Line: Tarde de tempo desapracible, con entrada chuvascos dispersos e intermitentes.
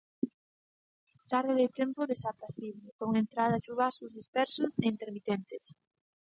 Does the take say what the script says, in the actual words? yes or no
yes